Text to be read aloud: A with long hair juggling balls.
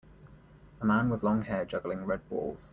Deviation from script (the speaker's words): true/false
true